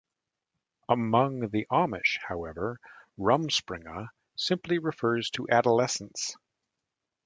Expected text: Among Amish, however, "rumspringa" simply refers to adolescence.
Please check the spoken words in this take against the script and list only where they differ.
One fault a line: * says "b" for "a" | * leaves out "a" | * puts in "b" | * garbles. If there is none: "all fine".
* puts in "the"